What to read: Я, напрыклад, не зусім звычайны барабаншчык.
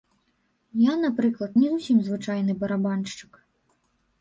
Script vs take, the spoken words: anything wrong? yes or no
no